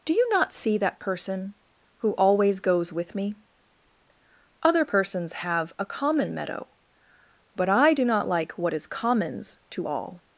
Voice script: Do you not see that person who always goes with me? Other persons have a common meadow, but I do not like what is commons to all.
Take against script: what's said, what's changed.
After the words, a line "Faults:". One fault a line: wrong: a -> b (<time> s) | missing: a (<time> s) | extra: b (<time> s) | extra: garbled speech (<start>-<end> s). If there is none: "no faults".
Do you not see that person who always goes with me? Other persons have a common meadow, but I do not like what is commons to all.
Faults:
no faults